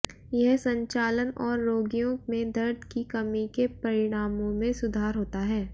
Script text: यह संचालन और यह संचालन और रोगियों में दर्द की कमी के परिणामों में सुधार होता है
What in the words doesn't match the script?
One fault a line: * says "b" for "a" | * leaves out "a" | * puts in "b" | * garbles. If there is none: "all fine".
* leaves out "यह संचालन और"